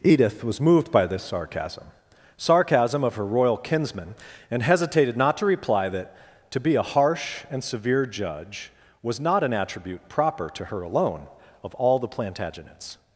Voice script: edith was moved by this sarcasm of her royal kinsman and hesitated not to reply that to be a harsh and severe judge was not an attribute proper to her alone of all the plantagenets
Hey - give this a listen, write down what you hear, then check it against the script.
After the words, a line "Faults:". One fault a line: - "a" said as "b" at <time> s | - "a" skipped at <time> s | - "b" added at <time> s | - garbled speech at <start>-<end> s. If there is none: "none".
edith was moved by this sarcasm sarcasm of her royal kinsman and hesitated not to reply that to be a harsh and severe judge was not an attribute proper to her alone of all the plantagenets
Faults:
- "sarcasm" added at 2.4 s